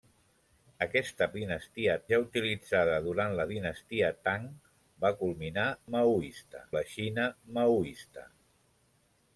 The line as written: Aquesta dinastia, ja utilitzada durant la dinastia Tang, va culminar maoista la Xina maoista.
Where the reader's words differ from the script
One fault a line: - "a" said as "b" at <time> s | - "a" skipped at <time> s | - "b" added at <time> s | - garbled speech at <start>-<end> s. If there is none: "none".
none